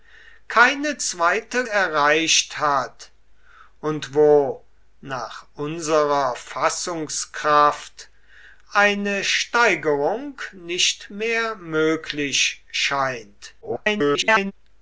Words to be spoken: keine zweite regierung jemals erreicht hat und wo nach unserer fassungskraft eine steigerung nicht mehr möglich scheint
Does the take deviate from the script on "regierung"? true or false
true